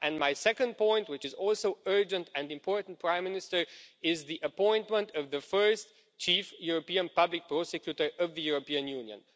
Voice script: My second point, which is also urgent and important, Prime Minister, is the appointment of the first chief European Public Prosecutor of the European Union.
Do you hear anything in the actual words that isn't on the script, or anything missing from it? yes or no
no